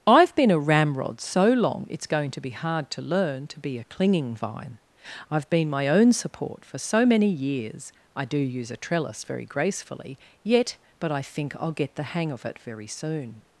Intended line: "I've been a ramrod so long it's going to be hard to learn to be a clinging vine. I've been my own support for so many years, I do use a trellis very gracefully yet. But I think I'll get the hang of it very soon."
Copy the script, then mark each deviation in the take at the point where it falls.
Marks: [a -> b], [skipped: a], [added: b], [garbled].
"I've been a ramrod so long it's going to be hard to learn to be a clinging vine. I've been my own support for so many years, I do use a trellis very gracefully yet. But I think I'll get the hang of it very soon."